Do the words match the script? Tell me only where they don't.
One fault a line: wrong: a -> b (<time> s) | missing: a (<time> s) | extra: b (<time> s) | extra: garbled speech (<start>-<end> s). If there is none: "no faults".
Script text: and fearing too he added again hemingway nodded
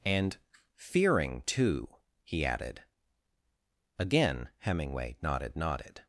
extra: nodded (5.6 s)